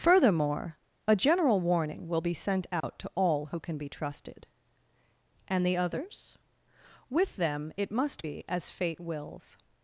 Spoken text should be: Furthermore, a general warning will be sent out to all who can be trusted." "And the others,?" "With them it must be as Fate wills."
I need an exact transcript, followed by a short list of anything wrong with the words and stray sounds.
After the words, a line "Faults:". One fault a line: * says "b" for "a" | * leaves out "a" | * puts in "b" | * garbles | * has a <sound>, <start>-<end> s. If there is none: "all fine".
Furthermore, a general warning will be sent out to all who can be trusted." "And the others,?" "With them it must be as Fate wills."
Faults:
* has a dropout, 2.8-2.8 s